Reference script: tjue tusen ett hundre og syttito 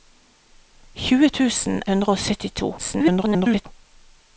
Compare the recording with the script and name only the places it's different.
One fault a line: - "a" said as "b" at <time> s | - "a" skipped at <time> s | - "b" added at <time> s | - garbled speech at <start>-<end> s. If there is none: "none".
- "ett" skipped at 1.8 s
- garbled speech at 2.8-3.7 s